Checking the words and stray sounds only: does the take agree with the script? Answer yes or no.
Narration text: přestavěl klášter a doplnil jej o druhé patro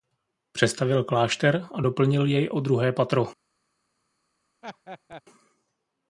no